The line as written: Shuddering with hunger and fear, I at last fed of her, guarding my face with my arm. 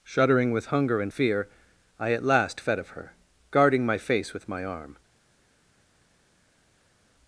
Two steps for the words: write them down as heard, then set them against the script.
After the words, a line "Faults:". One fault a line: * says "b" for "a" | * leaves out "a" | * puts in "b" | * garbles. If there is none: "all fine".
Shuddering with hunger and fear, I at last fed of her, guarding my face with my arm.
Faults:
all fine